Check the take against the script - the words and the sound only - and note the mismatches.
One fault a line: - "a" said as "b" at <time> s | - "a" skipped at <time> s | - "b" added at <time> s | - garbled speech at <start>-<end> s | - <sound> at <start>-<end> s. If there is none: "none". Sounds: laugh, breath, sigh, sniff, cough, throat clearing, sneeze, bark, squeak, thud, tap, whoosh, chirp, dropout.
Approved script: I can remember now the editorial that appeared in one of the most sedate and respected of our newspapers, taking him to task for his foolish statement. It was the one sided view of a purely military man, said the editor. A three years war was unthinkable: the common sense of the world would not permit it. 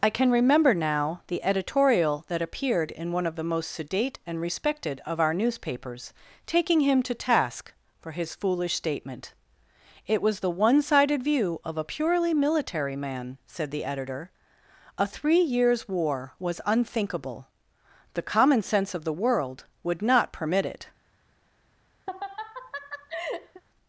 - laugh at 22.1-23.6 s